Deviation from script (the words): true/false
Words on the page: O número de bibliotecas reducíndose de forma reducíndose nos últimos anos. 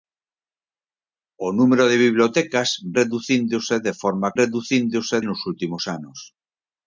false